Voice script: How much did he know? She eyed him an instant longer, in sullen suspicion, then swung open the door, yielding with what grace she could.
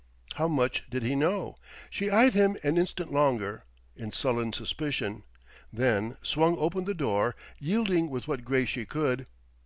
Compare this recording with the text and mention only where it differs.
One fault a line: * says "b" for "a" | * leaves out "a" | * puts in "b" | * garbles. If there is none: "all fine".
all fine